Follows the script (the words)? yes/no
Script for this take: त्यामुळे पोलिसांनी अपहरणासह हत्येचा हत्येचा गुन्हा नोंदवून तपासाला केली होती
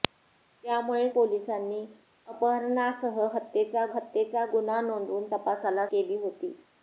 yes